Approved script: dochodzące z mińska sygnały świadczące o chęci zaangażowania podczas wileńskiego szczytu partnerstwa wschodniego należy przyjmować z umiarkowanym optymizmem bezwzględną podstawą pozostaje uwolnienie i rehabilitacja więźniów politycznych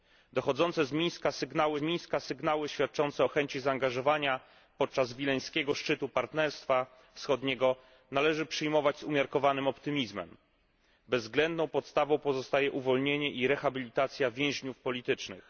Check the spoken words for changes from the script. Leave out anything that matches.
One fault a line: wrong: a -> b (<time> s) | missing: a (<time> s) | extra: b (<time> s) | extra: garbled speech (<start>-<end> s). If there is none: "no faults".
extra: mińska sygnały (1.8 s)